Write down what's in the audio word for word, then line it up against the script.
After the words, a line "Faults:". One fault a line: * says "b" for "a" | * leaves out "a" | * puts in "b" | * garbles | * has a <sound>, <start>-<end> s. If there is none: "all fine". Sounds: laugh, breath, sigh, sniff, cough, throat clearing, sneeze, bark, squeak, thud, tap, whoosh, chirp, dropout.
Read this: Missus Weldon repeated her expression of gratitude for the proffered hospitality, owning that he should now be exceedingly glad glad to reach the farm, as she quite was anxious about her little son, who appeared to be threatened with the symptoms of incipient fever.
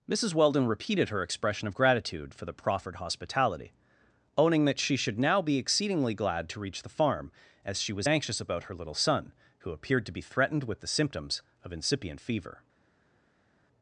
Missus Weldon repeated her expression of gratitude for the proffered hospitality, owning that she should now be exceedingly glad to reach the farm, as she was anxious about her little son, who appeared to be threatened with the symptoms of incipient fever.
Faults:
* says "she" for "he"
* leaves out "glad"
* leaves out "quite"